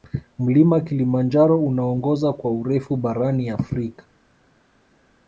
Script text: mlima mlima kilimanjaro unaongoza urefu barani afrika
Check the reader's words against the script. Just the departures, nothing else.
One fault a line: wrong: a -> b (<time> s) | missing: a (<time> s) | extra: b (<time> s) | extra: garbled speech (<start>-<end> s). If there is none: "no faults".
missing: mlima (0.8 s)
extra: kwa (2.3 s)